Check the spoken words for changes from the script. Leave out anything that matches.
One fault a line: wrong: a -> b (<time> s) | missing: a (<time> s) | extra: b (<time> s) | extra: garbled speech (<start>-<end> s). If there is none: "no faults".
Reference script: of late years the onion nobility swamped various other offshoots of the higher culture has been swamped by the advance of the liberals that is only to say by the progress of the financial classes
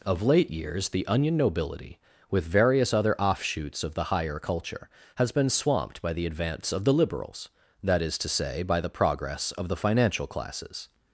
wrong: swamped -> with (2.3 s)
missing: only (8.2 s)